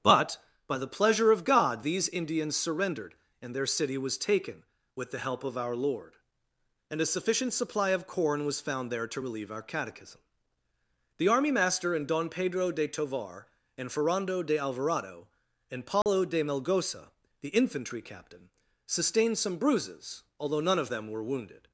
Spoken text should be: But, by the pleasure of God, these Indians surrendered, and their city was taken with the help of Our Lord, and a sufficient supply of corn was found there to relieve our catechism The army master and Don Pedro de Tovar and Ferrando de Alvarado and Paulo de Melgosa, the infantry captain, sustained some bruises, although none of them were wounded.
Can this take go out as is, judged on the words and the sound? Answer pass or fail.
fail